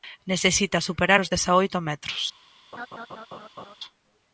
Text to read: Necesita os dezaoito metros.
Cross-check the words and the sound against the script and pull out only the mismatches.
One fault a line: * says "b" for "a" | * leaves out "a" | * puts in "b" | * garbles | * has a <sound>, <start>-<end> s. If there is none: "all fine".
* puts in "superar"
* has a laugh, 2.7-3.8 s